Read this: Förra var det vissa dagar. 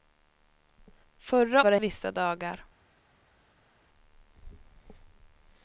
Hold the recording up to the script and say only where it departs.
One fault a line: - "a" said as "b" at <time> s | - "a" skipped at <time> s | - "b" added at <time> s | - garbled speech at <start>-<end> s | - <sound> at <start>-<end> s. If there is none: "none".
none